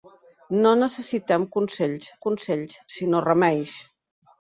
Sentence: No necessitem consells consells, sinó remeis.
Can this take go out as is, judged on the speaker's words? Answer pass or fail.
pass